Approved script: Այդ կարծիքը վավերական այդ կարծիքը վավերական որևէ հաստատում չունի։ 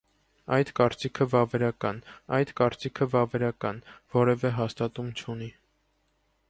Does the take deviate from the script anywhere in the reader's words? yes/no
no